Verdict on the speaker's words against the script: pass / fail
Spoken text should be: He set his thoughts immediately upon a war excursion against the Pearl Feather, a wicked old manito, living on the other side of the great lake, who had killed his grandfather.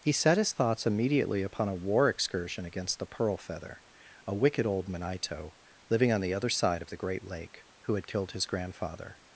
pass